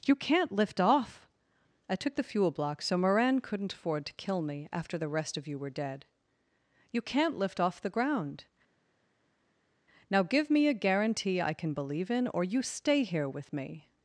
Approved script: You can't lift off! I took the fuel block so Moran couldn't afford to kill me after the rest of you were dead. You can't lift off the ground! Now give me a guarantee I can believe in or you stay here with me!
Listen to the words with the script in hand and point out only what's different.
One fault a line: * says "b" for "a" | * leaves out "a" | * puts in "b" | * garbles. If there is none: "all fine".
all fine